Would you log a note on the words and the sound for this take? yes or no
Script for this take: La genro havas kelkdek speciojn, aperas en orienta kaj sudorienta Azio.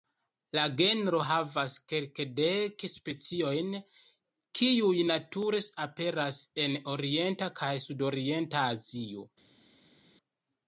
yes